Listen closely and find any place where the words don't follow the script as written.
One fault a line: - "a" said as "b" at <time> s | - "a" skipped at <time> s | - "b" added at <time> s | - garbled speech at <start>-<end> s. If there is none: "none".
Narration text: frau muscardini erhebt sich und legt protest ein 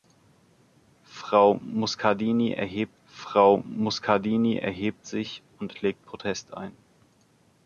- "frau muscardini erhebt" added at 3.1 s